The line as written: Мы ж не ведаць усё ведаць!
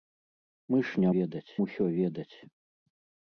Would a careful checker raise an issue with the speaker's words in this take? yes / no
no